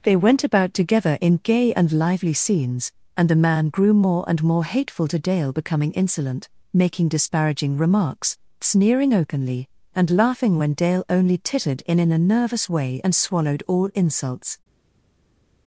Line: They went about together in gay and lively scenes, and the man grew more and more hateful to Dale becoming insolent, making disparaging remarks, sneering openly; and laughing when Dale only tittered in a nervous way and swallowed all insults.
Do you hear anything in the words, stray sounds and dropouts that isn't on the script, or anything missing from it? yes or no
yes